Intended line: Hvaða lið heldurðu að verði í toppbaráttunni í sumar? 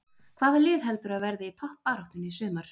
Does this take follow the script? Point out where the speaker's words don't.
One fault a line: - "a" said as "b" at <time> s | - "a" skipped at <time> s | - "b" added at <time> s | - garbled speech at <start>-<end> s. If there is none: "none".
none